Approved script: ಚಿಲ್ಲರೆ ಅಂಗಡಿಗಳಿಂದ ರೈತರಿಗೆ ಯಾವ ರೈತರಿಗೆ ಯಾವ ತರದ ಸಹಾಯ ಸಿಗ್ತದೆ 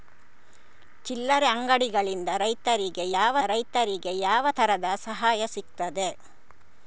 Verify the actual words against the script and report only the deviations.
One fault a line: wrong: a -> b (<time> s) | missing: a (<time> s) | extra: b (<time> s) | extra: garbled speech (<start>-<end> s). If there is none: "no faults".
no faults